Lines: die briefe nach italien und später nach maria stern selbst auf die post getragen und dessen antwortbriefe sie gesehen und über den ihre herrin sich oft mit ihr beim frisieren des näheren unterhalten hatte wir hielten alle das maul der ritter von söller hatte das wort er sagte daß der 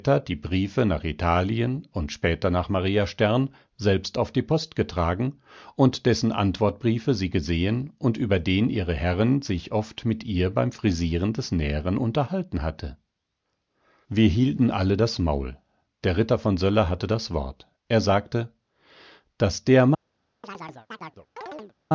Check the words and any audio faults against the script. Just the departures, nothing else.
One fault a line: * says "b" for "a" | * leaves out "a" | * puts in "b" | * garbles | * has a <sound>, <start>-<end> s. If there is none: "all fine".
* has a chirp, 20.4-21.7 s